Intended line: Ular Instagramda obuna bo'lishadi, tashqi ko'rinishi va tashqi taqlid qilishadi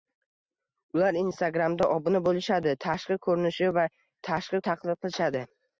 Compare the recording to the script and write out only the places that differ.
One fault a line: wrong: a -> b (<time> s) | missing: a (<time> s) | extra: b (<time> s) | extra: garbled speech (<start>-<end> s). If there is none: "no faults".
no faults